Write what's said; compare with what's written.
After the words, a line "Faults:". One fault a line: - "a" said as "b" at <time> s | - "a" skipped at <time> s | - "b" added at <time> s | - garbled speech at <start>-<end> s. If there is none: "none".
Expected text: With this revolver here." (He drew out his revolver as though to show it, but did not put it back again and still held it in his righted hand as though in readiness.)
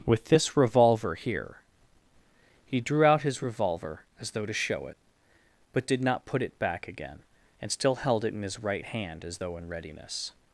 With this revolver here." (He drew out his revolver as though to show it, but did not put it back again and still held it in his right hand as though in readiness.)
Faults:
- "righted" said as "right" at 8.6 s